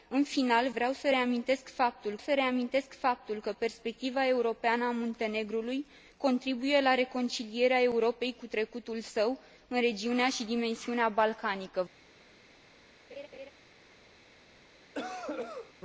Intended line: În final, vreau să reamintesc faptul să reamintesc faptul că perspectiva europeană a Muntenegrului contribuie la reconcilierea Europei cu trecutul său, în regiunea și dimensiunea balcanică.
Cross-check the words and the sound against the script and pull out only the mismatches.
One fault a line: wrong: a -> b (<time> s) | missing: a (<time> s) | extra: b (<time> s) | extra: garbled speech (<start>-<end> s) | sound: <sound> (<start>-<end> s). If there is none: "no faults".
sound: laugh (13.1-13.5 s)
sound: cough (14.9-15.7 s)